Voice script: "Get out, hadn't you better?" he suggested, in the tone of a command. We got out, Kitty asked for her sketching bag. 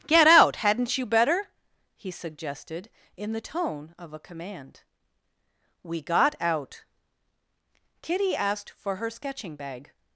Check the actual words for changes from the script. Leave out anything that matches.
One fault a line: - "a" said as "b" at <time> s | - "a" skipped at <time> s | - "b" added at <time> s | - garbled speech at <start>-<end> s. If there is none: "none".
none